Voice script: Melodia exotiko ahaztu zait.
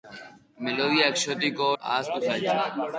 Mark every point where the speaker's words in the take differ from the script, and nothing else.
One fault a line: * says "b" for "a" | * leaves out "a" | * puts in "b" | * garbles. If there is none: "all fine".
all fine